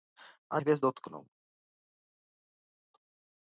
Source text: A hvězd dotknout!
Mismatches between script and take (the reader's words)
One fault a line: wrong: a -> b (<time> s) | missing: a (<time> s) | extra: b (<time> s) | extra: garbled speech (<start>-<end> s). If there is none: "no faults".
no faults